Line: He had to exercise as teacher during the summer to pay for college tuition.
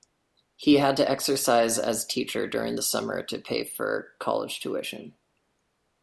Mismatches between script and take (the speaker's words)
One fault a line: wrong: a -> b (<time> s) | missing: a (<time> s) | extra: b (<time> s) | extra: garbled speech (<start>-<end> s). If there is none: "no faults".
no faults